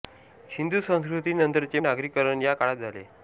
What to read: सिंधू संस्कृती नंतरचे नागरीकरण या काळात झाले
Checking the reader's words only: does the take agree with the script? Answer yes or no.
yes